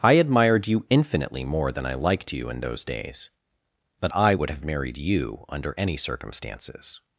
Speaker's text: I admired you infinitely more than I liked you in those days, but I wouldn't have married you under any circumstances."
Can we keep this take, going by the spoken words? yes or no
no